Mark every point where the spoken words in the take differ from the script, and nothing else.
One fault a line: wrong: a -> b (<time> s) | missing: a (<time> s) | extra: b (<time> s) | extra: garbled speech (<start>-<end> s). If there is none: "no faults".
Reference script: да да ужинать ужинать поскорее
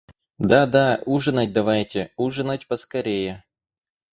extra: давайте (1.5 s)